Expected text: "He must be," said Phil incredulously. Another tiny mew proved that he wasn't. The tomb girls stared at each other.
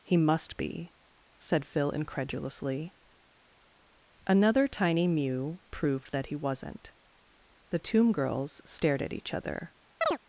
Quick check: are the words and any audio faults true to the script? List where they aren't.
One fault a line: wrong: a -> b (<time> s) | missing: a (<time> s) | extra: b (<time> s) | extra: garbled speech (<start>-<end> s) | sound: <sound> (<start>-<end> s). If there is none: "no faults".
sound: chirp (10.0-10.2 s)